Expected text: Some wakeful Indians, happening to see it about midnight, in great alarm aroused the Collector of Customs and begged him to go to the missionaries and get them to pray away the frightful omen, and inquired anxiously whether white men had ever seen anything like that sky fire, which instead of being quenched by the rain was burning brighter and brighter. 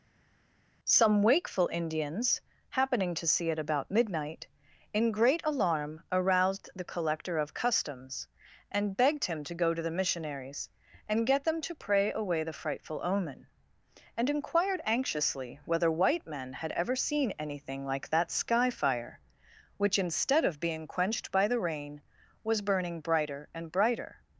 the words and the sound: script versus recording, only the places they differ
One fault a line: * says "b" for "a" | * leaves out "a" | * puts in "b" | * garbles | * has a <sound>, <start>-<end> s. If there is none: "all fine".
all fine